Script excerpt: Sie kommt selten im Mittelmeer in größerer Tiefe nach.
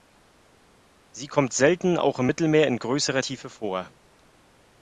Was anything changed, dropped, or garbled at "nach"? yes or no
yes